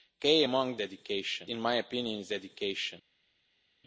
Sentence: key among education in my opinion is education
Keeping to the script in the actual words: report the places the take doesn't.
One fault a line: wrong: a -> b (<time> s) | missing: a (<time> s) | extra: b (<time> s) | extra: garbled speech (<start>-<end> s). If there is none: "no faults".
no faults